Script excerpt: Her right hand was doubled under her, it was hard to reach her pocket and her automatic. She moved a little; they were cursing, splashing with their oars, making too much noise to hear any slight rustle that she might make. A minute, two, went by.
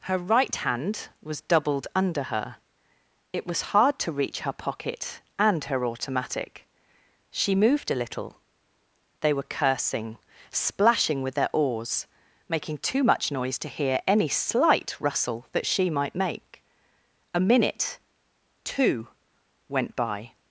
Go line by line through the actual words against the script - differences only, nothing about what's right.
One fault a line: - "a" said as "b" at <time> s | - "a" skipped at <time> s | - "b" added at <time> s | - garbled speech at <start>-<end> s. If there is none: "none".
none